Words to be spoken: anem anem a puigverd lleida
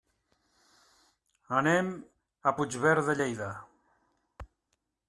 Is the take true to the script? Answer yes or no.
no